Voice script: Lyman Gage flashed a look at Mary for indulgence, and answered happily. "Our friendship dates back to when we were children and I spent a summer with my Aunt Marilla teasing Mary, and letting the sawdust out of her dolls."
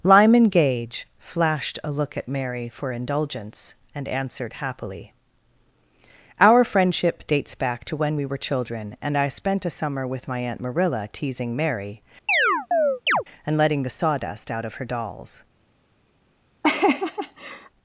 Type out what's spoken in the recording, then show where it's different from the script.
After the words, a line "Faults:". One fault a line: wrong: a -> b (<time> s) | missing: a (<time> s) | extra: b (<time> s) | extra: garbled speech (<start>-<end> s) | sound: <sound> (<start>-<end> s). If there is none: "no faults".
Lyman Gage flashed a look at Mary for indulgence, and answered happily. "Our friendship dates back to when we were children and I spent a summer with my Aunt Marilla teasing Mary, and letting the sawdust out of her dolls."
Faults:
sound: chirp (12.3-13.2 s)
sound: laugh (16.6-17.7 s)